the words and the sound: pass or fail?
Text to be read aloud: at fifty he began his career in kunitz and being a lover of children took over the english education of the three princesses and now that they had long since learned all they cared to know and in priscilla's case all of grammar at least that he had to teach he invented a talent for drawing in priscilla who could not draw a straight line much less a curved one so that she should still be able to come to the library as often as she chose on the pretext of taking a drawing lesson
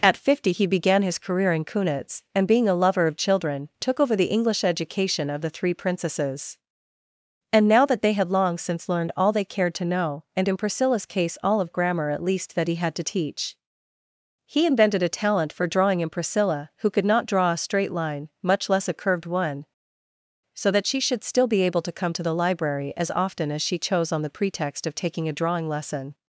pass